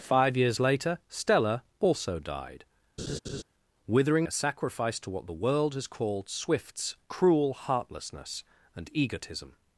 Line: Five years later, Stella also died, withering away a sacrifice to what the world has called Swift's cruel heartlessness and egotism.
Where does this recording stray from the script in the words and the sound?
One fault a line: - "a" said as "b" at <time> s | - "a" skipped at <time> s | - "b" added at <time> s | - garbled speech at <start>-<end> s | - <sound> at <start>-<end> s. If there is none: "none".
- laugh at 3.0-3.4 s
- "away" skipped at 4.3 s